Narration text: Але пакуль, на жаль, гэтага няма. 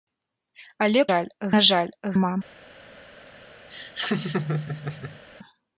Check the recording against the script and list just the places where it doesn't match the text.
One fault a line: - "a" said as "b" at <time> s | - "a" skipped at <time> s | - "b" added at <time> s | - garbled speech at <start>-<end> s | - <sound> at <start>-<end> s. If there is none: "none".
- "пакуль" said as "жаль" at 1.1 s
- "гэтага" skipped at 2.0 s
- laugh at 3.7-5.2 s